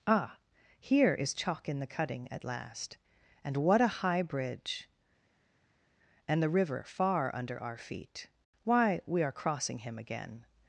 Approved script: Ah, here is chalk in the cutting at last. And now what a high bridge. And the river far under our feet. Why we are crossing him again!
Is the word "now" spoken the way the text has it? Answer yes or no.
no